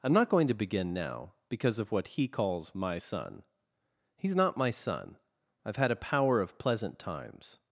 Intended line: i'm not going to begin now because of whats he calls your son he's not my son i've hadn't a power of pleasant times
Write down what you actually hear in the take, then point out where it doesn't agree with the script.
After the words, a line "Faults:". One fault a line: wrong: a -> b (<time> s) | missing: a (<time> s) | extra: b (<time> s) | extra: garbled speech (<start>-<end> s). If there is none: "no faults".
i'm not going to begin now because of what he calls my son he's not my son i've had a power of pleasant times
Faults:
wrong: whats -> what (1.9 s)
wrong: your -> my (2.7 s)
wrong: hadn't -> had (5.8 s)